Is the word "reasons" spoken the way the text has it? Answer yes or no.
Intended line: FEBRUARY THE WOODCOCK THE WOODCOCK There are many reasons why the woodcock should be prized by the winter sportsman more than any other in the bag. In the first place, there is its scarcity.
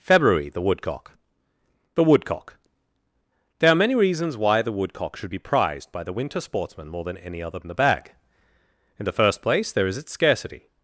yes